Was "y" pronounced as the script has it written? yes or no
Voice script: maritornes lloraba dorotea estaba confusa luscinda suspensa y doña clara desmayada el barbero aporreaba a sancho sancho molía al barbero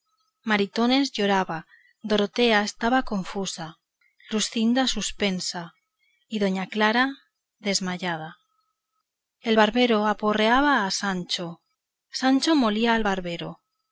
yes